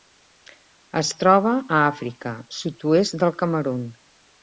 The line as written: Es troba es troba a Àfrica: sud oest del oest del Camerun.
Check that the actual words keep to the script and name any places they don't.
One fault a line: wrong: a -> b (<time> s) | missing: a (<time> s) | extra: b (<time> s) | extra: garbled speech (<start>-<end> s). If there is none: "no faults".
missing: es troba (1.5 s)
missing: oest del (3.4 s)